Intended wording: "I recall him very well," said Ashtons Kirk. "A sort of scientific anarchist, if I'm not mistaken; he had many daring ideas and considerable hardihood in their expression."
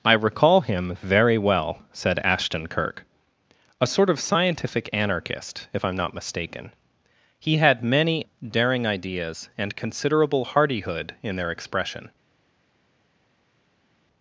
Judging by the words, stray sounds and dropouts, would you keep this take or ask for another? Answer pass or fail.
fail